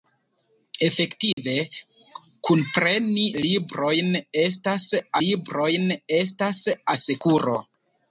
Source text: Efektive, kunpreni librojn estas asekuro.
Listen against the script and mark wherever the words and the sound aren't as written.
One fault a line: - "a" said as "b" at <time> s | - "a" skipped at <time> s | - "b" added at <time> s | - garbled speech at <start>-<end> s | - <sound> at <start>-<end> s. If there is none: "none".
- dropout at 1.3-1.4 s
- "librojn estas" added at 5.3 s